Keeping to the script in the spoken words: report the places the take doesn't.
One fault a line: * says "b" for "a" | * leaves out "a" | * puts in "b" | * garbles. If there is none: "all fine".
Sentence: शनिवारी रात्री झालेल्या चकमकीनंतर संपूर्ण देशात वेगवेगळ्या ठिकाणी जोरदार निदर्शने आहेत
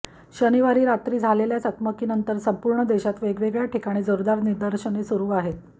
* puts in "सुरू"